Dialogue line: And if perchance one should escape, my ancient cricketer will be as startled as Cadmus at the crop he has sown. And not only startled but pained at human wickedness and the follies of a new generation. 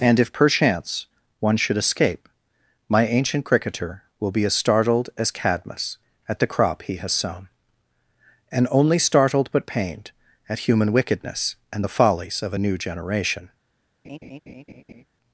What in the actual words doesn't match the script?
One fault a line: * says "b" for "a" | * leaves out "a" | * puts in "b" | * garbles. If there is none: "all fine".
* leaves out "not"